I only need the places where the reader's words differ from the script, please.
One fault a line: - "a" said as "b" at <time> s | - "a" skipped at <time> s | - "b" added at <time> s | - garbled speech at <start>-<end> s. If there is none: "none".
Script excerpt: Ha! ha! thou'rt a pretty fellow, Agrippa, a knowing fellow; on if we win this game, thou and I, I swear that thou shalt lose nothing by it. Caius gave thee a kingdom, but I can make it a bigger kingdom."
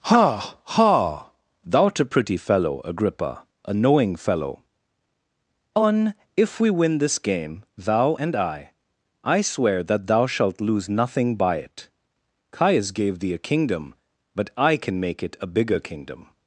none